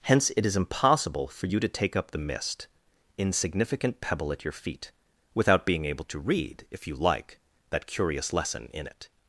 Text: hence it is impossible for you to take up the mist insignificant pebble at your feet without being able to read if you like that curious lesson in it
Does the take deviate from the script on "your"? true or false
false